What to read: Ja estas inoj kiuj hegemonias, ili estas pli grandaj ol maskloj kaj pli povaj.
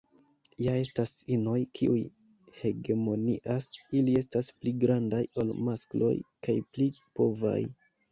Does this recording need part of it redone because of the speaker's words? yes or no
no